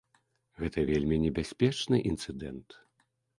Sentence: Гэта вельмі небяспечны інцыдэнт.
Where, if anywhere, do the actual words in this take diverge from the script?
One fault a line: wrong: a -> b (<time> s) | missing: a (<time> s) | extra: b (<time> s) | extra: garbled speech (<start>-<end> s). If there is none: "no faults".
no faults